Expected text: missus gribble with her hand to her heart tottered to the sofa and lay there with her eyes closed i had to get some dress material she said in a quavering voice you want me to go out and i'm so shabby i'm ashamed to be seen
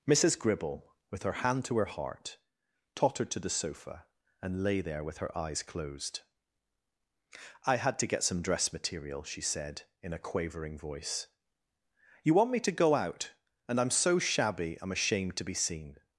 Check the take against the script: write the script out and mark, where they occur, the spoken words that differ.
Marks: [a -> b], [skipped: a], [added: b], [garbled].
missus gribble with her hand to her heart tottered to the sofa and lay there with her eyes closed i had to get some dress material she said in a quavering voice you want me to go out and i'm so shabby i'm ashamed to be seen